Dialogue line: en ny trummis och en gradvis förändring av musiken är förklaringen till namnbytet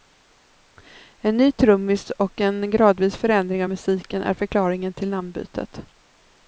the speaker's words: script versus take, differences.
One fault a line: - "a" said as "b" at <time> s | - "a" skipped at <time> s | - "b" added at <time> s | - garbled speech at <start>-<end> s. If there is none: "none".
none